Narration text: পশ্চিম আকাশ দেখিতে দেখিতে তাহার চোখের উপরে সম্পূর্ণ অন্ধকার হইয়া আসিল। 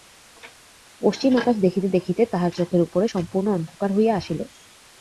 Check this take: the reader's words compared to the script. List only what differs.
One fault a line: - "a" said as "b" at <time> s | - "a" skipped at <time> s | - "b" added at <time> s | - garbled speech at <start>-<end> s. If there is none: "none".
none